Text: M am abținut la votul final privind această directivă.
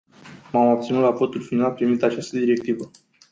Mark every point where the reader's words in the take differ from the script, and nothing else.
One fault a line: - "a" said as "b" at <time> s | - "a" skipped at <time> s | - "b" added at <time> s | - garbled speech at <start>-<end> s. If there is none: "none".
none